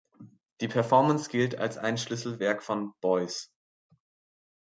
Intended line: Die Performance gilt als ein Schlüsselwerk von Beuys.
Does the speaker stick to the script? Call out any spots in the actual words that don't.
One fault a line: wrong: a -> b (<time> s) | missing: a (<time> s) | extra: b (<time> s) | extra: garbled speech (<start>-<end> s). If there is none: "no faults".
no faults